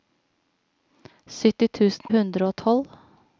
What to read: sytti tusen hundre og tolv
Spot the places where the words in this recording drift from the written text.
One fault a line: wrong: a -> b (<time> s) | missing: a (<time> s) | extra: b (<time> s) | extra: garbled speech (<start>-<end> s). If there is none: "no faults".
no faults